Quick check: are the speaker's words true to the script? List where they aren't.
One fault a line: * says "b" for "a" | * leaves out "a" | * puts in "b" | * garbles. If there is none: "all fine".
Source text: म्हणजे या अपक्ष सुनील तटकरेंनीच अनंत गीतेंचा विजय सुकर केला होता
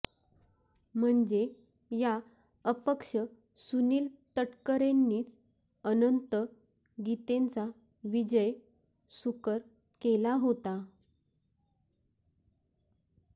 all fine